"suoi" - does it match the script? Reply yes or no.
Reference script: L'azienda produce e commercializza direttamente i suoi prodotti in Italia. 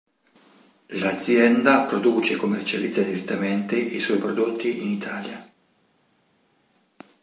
yes